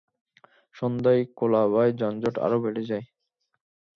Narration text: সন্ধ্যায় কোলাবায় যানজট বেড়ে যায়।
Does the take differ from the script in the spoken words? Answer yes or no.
yes